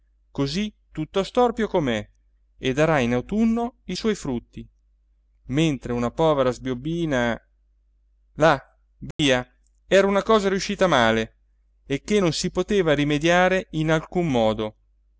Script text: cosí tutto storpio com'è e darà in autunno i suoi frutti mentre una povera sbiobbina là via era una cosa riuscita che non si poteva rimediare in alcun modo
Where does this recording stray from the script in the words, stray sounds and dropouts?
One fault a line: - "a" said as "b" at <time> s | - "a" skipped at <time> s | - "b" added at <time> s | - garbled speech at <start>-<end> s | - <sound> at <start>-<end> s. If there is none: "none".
- dropout at 9.1-9.2 s
- "male e" added at 10.9 s